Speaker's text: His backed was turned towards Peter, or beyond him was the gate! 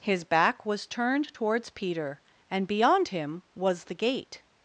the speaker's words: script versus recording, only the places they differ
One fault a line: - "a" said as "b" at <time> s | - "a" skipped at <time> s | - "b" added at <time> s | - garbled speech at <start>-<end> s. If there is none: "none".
- "backed" said as "back" at 0.2 s
- "or" said as "and" at 2.5 s